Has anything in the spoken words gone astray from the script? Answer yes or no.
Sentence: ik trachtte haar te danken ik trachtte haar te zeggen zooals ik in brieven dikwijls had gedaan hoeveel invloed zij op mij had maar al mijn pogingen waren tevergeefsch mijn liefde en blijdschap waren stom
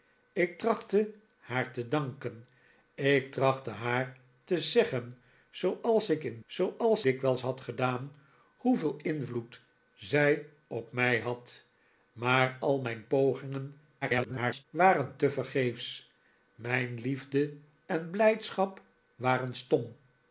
yes